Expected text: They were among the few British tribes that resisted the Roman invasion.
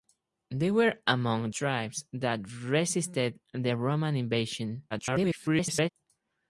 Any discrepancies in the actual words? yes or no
yes